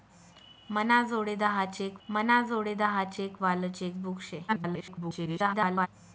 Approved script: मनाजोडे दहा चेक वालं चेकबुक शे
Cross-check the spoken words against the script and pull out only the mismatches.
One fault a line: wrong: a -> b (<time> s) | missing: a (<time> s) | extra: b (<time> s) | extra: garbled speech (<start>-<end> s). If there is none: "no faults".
extra: मनाजोडे दहा चेक (2.1 s)
extra: garbled speech (4.5-5.9 s)